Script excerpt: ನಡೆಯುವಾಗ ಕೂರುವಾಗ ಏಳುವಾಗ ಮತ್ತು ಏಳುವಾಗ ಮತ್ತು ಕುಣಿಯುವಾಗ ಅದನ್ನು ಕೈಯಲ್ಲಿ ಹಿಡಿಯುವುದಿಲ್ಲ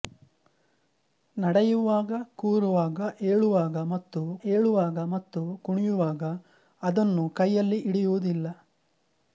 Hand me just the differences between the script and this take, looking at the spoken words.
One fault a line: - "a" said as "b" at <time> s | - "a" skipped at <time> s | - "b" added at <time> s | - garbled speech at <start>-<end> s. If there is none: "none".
none